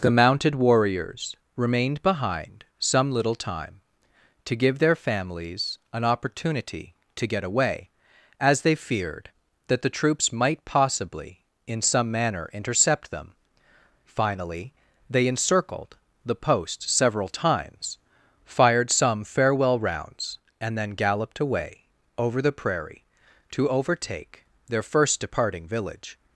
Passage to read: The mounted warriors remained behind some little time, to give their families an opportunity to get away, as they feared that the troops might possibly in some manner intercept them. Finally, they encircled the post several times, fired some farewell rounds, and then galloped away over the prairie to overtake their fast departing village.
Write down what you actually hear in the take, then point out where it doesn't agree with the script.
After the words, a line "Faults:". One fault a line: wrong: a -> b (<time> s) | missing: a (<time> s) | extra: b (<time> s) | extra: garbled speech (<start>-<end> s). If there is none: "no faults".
The mounted warriors remained behind some little time, to give their families an opportunity to get away, as they feared that the troops might possibly in some manner intercept them. Finally, they encircled the post several times, fired some farewell rounds, and then galloped away over the prairie to overtake their first departing village.
Faults:
wrong: fast -> first (24.8 s)